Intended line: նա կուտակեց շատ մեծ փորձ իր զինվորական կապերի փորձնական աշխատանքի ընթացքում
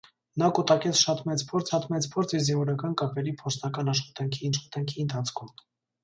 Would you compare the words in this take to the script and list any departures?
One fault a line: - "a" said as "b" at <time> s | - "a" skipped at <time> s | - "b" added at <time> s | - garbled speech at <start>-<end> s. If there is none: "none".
- "շատ մեծ փորձ" added at 1.7 s
- "աշխատանքի" added at 4.5 s